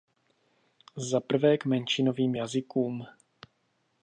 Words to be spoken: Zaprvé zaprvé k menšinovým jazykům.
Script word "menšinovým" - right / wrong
right